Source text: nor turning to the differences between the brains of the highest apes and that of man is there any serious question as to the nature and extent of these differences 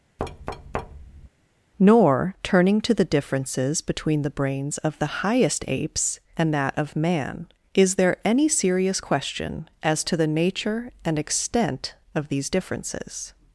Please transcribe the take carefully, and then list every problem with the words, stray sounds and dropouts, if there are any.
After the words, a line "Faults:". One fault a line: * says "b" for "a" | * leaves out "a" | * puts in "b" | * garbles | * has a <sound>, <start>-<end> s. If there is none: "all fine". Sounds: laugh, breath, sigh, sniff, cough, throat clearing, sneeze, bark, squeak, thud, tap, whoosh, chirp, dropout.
nor turning to the differences between the brains of the highest apes and that of man is there any serious question as to the nature and extent of these differences
Faults:
* has a thud, 0.2-1.3 s